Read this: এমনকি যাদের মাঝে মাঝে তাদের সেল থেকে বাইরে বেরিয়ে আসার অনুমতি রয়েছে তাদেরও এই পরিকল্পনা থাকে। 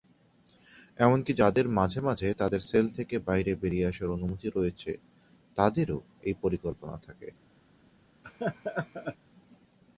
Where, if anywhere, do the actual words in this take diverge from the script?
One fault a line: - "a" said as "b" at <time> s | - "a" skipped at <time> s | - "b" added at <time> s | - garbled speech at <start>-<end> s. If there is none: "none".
none